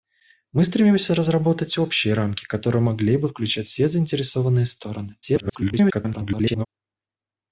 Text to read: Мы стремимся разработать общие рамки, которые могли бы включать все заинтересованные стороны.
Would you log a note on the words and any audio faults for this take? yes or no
yes